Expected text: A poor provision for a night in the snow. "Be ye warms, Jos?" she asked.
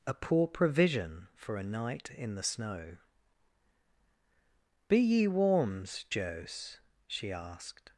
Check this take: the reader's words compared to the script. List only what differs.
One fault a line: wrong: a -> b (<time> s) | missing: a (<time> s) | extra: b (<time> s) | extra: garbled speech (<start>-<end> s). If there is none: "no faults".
no faults